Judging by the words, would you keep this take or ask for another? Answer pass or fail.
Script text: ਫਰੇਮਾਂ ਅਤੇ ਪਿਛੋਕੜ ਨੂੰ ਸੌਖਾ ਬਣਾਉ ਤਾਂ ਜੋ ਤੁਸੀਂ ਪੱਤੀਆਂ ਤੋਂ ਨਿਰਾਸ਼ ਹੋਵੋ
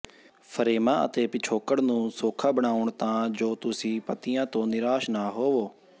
fail